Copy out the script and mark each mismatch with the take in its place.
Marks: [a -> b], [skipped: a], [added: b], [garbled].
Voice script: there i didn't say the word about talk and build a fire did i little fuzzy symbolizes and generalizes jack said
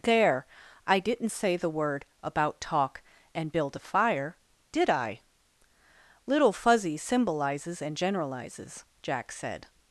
there i didn't say the word about talk and build a fire did i little fuzzy symbolizes and generalizes jack said